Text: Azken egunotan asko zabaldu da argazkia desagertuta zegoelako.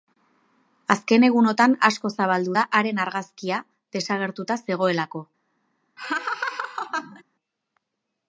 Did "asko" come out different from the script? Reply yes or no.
no